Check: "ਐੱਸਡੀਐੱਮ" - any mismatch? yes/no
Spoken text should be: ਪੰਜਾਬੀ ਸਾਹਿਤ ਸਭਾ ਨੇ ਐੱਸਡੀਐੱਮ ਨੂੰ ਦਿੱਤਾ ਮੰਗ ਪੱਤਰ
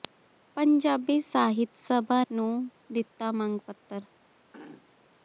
yes